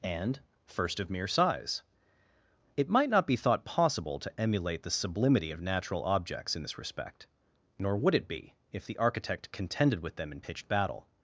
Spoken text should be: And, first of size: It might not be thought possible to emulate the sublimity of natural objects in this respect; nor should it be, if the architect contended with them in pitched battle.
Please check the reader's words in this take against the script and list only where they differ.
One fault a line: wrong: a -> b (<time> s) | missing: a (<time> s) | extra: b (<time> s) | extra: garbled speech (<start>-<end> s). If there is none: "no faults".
extra: mere (1.1 s)
wrong: should -> would (8.0 s)